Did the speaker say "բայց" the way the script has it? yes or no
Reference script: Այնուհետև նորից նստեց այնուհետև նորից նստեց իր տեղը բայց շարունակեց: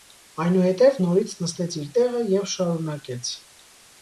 no